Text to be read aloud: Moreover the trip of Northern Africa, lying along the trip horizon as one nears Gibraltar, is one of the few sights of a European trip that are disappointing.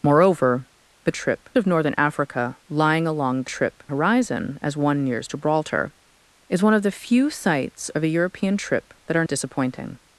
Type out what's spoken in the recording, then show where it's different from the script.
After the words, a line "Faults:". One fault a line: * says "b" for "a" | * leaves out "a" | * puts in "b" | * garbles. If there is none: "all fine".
Moreover the trip of Northern Africa, lying along the trip horizon as one nears Gibraltar, is one of the few sights of a European trip that are disappointing.
Faults:
all fine